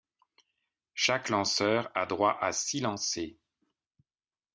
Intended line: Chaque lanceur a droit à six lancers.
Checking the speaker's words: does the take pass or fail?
pass